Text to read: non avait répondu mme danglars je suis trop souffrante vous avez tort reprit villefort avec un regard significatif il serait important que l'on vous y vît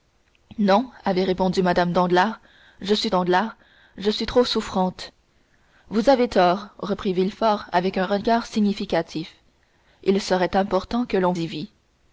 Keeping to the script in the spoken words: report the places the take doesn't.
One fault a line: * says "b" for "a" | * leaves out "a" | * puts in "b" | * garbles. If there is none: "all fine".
* puts in "danglars je suis"
* leaves out "vous"